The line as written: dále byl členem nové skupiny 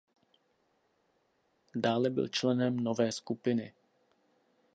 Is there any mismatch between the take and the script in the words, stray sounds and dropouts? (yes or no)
no